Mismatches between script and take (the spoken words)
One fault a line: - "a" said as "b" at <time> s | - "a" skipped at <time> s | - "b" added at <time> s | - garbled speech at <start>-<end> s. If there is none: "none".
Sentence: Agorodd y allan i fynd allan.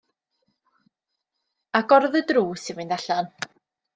- "allan" said as "drws" at 2.3 s